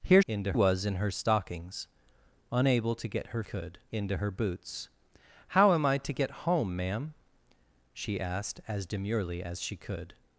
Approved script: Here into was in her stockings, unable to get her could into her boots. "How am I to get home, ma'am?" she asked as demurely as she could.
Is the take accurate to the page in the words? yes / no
yes